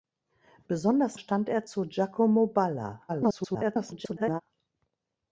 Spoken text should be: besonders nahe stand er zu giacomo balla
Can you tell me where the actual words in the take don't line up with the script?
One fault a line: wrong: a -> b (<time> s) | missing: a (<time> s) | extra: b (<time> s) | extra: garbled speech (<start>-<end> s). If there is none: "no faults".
missing: nahe (1.2 s)
extra: garbled speech (3.1-4.4 s)